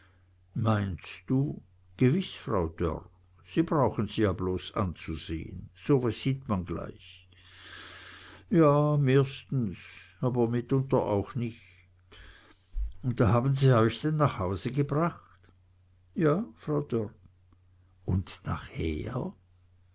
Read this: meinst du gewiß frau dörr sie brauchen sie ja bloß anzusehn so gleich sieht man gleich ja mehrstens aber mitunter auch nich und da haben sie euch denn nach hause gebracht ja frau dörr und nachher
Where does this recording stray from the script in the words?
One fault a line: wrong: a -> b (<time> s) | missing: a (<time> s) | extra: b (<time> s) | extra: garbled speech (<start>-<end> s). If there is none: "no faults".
wrong: gleich -> was (6.0 s)